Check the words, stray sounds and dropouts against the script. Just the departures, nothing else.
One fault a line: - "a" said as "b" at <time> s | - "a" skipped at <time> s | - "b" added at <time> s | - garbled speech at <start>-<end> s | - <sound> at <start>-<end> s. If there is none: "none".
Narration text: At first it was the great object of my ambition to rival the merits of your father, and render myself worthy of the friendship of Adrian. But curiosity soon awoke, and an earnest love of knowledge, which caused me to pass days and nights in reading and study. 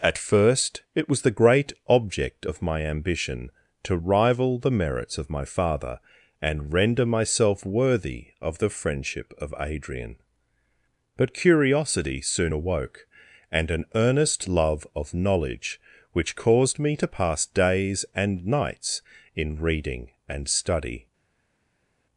- "your" said as "my" at 5.3 s